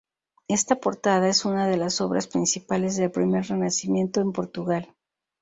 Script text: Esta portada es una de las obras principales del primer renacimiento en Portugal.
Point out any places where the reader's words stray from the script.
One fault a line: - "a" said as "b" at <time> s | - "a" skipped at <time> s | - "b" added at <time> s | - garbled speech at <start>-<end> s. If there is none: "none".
none